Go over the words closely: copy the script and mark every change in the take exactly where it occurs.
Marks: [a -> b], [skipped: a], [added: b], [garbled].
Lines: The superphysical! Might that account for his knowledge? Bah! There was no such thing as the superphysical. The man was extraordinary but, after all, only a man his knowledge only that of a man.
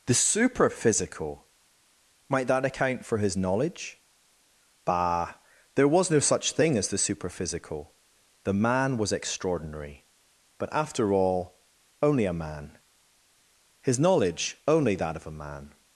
The superphysical! Might that account for his knowledge? Bah! There was no such thing as the superphysical. The man was extraordinary but, after all, only a man his knowledge only that of a man.